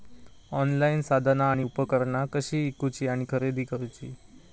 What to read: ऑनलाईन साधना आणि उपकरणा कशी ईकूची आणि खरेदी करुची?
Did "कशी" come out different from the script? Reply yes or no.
no